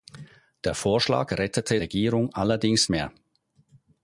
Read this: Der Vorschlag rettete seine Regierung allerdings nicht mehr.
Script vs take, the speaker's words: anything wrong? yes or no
yes